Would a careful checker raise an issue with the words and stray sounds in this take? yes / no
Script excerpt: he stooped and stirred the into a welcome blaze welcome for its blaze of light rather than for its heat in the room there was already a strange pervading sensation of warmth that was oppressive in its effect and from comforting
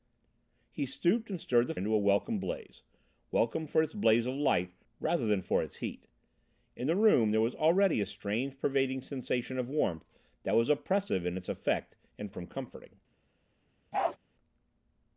yes